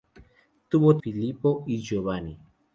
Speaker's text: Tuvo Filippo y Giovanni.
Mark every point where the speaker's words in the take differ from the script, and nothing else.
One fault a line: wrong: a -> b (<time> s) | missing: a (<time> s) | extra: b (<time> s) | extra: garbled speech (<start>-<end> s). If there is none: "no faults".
no faults